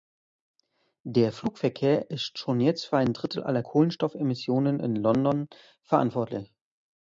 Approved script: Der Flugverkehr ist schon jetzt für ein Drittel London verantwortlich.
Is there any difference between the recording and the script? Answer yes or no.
yes